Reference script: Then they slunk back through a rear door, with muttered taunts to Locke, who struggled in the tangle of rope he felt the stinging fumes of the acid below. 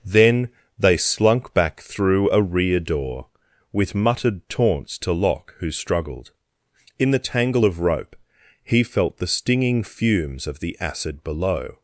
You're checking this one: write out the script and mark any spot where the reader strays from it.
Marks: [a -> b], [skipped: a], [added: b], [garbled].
Then they slunk back through a rear door, with muttered taunts to Locke, who struggled in the tangle of rope he felt the stinging fumes of the acid below.